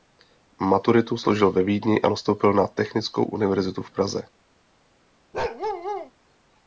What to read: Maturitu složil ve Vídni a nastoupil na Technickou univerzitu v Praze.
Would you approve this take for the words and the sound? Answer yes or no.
no